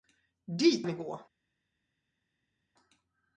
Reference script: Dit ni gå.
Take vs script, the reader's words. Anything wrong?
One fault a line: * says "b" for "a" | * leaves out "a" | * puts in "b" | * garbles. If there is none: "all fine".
all fine